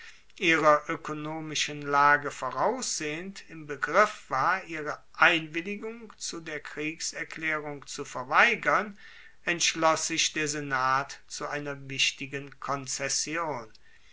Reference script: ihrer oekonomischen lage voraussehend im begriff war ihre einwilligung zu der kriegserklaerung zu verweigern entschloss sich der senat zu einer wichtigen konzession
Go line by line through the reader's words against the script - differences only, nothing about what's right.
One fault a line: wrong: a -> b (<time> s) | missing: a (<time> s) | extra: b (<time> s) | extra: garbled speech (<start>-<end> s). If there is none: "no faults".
no faults